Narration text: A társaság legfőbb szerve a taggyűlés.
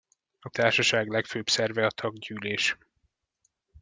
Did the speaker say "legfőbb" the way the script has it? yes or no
yes